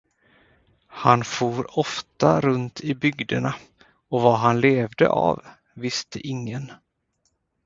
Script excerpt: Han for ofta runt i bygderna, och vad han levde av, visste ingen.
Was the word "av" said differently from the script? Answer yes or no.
no